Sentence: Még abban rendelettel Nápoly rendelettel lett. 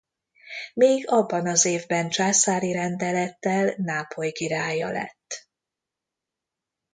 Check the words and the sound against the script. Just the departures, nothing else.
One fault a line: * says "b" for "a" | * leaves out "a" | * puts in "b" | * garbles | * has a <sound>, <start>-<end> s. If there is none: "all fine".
* puts in "az évben császári"
* says "királya" for "rendelettel"